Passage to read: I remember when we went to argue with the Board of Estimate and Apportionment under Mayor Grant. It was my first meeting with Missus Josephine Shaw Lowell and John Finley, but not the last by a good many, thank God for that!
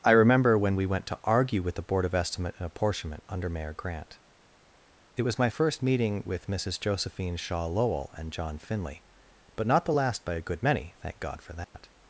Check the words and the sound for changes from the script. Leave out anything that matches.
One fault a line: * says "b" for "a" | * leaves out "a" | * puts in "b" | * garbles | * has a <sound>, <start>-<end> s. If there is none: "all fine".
* has a dropout, 11.6-11.7 s